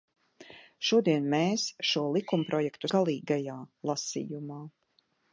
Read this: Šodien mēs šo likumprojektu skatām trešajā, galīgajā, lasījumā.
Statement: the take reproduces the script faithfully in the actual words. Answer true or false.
false